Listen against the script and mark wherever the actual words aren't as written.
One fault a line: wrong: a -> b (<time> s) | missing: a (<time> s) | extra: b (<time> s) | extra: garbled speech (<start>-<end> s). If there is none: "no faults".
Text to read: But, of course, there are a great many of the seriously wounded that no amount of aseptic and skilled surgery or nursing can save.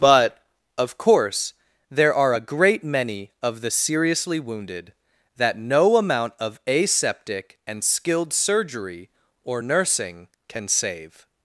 no faults